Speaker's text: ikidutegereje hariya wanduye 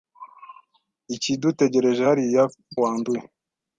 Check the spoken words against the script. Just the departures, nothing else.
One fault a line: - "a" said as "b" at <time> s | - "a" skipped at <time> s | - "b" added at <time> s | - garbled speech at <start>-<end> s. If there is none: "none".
none